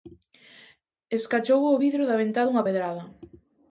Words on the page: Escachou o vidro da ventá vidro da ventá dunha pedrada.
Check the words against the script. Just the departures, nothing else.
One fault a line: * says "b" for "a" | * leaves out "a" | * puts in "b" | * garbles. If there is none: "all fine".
* leaves out "vidro da ventá"